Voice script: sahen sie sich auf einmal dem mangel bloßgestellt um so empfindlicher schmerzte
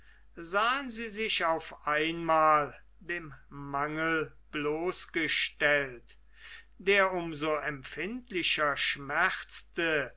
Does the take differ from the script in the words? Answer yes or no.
yes